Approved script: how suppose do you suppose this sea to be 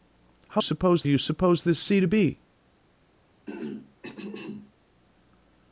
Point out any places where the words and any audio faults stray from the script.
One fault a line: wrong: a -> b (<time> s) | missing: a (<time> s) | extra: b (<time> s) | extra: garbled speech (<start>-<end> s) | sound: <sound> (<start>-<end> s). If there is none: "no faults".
sound: throat clearing (3.5-4.7 s)